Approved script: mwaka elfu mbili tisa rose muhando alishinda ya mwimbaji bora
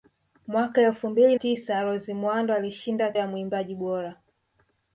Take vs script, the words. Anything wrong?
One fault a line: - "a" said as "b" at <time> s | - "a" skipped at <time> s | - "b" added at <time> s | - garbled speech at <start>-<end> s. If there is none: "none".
none